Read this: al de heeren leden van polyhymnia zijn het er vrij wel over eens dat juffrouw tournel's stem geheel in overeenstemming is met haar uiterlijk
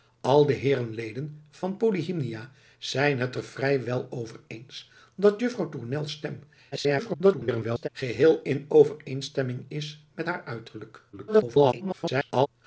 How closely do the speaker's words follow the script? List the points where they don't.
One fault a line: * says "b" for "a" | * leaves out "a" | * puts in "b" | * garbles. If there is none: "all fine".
* garbles
* garbles